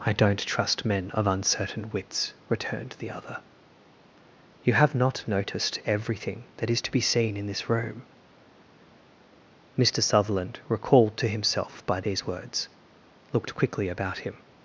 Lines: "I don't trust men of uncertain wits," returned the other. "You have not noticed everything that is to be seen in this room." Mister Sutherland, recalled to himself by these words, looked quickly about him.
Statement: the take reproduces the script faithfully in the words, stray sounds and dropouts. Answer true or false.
true